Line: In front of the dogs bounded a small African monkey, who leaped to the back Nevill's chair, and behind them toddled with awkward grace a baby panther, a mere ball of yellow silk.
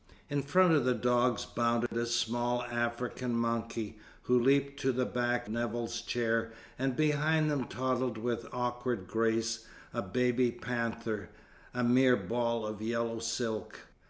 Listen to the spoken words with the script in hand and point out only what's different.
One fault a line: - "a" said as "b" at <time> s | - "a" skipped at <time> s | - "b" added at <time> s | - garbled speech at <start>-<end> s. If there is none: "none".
none